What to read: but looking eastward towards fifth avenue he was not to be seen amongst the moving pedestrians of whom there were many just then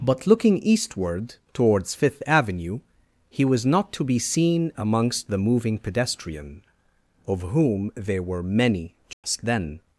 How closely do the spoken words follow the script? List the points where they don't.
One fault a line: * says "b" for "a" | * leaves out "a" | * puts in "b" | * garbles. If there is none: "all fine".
* says "pedestrian" for "pedestrians"